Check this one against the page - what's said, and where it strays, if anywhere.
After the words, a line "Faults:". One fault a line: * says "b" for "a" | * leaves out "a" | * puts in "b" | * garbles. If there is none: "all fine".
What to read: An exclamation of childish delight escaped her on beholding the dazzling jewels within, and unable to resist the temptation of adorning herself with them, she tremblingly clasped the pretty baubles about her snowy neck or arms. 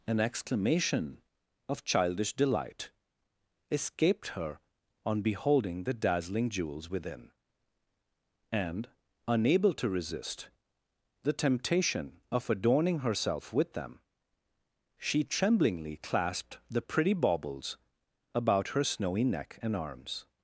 An exclamation of childish delight escaped her on beholding the dazzling jewels within, and unable to resist the temptation of adorning herself with them, she tremblingly clasped the pretty baubles about her snowy neck and arms.
Faults:
* says "and" for "or"